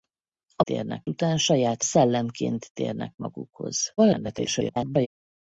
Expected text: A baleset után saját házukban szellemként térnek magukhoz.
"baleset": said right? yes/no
no